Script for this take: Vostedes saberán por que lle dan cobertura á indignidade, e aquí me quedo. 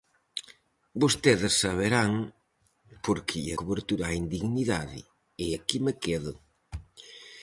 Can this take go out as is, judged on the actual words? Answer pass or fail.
fail